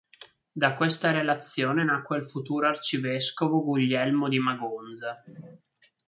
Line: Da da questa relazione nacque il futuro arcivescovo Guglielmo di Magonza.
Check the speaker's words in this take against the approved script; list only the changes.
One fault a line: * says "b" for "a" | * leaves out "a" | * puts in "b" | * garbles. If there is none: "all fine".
* leaves out "da"